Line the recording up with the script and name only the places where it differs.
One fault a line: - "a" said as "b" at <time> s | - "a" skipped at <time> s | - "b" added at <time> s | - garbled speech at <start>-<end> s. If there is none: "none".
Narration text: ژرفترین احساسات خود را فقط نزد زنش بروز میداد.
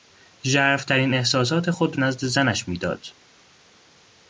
- "را فقط" skipped at 2.0 s
- "بروز" skipped at 2.6 s